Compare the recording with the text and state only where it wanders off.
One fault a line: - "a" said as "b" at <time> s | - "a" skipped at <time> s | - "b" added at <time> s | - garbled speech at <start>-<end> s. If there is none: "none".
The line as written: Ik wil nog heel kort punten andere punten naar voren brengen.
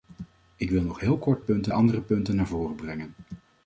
none